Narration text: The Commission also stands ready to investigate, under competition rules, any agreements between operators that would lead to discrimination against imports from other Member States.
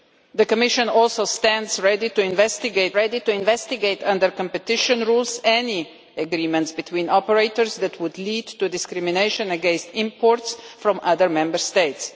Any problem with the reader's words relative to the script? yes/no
yes